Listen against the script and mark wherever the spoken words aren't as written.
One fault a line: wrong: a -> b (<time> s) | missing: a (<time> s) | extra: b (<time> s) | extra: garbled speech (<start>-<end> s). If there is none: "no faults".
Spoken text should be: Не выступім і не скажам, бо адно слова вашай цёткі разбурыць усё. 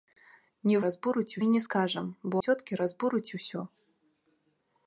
wrong: выступім -> разбурыць (0.9 s)
missing: адно слова вашай (2.4 s)